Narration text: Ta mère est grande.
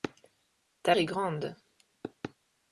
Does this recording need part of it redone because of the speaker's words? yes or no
yes